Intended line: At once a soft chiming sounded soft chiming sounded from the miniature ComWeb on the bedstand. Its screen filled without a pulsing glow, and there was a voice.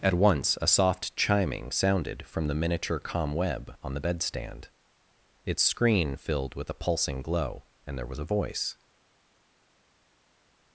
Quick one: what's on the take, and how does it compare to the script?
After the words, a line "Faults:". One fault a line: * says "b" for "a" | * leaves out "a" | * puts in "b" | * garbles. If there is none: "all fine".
At once a soft chiming sounded from the miniature ComWeb on the bedstand. Its screen filled with a pulsing glow, and there was a voice.
Faults:
* leaves out "soft chiming sounded"
* says "with" for "without"